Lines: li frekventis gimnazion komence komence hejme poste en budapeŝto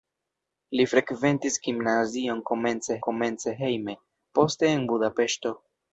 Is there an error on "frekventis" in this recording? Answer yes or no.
no